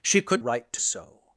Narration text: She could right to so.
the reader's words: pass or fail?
pass